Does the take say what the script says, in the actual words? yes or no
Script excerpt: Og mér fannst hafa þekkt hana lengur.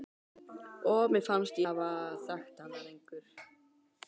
yes